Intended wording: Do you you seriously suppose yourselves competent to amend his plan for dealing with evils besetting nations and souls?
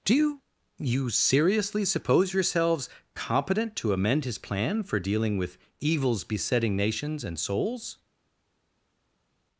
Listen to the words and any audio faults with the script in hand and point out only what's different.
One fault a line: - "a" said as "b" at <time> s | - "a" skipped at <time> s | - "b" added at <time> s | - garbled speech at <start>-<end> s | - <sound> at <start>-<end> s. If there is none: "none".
none